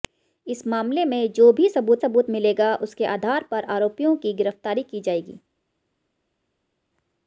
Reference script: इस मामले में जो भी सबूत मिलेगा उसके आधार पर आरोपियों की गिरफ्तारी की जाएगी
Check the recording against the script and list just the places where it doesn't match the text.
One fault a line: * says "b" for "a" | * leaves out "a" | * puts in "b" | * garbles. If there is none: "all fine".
* puts in "सबूत"